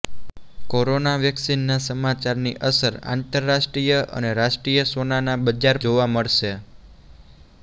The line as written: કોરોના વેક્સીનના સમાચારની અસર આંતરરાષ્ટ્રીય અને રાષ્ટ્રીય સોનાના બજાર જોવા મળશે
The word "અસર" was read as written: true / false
true